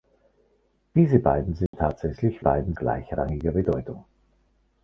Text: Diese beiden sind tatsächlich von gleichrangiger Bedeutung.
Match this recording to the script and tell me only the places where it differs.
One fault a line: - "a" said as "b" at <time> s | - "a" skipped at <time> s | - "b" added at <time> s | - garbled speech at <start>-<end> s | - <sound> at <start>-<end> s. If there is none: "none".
- dropout at 1.7-1.7 s
- "von" said as "beiden" at 2.4 s